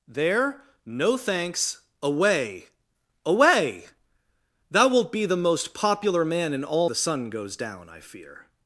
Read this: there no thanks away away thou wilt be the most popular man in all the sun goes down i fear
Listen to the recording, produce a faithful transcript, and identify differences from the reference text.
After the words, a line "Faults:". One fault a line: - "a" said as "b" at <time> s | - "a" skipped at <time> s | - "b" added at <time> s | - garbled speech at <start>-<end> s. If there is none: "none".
there no thanks away away thou wilt be the most popular man in all the sun goes down i fear
Faults:
none